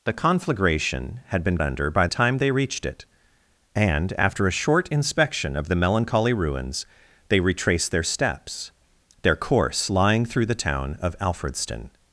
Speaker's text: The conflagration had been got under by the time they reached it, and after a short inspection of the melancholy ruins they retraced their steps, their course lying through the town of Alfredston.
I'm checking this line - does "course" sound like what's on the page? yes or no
yes